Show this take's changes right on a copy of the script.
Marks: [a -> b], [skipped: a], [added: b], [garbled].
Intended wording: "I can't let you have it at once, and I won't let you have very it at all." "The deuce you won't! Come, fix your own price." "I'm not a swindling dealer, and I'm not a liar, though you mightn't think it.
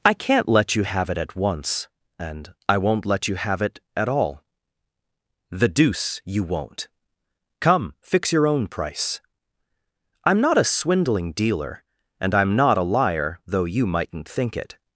"I can't let you have it at once, and I won't let you have [skipped: very] it at all." "The deuce you won't! Come, fix your own price." "I'm not a swindling dealer, and I'm not a liar, though you mightn't think it.